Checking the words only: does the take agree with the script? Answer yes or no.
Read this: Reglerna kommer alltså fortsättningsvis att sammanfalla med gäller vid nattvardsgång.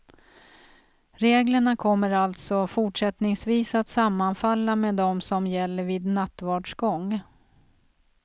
no